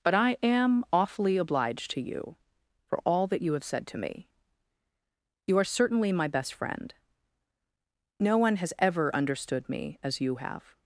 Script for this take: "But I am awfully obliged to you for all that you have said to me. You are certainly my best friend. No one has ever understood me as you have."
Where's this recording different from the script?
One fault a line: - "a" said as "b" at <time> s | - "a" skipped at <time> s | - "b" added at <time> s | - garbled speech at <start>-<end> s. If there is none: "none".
none